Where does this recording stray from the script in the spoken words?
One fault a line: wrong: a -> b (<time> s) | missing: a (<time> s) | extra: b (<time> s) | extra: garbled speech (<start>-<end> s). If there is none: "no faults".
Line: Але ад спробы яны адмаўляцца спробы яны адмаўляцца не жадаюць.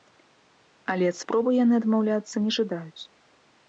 missing: спробы яны адмаўляцца (2.4 s)